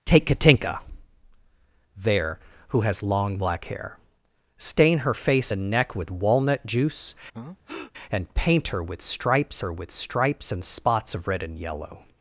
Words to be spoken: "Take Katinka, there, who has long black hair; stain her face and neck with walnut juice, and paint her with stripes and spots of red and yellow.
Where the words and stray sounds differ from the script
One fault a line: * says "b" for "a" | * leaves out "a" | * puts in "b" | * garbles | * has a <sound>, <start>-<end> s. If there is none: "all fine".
* has a breath, 7.3-7.9 s
* puts in "her with stripes"